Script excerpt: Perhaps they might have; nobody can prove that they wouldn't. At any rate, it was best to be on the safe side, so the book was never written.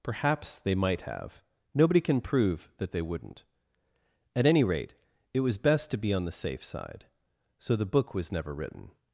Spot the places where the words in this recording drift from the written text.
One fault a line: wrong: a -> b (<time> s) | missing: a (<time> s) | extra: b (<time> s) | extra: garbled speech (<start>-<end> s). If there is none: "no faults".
no faults